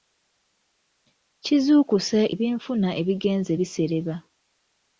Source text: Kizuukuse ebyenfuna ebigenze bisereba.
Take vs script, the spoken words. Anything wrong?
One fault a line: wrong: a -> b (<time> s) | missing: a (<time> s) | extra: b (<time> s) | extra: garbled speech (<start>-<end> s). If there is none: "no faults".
no faults